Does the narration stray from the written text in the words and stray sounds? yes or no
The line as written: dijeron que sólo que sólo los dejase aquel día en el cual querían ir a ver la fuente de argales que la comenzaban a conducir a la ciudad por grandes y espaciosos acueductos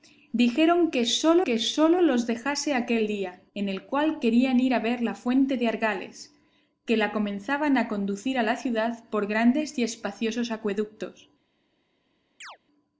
yes